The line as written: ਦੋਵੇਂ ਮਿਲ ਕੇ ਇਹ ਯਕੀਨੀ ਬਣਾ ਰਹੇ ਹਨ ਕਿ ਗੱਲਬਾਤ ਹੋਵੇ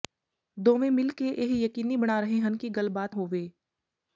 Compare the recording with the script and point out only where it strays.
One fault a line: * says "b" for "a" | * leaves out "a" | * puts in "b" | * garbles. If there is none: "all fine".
all fine